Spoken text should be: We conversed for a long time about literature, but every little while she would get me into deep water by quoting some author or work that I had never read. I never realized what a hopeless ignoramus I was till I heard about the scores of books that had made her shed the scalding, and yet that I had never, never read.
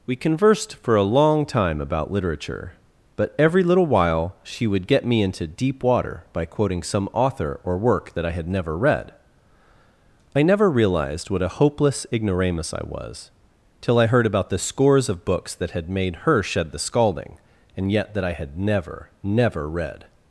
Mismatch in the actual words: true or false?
false